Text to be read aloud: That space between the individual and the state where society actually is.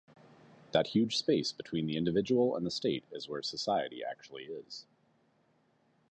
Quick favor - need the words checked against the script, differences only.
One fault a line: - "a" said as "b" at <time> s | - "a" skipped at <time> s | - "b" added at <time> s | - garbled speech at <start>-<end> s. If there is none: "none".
- "huge" added at 0.9 s
- "is" added at 3.1 s